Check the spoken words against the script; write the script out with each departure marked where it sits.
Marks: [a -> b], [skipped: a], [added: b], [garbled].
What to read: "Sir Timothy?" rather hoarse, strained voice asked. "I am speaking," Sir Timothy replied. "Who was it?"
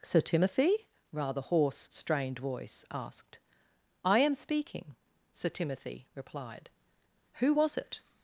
"Sir Timothy?" rather hoarse, strained voice asked. "I am speaking," Sir Timothy replied. "Who was it?"